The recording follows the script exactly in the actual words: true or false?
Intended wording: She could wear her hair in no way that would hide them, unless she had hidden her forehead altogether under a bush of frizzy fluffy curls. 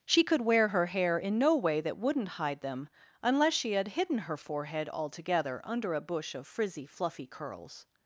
false